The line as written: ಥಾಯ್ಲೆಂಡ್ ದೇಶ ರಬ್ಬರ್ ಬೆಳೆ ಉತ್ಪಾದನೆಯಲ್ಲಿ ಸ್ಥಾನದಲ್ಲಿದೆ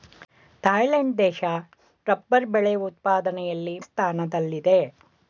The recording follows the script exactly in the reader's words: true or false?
true